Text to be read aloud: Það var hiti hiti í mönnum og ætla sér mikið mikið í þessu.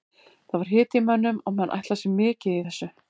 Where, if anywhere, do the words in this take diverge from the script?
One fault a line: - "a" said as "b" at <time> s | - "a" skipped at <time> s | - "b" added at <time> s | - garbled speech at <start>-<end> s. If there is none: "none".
- "hiti" skipped at 1.0 s
- "menn" added at 1.6 s
- "mikið" skipped at 2.6 s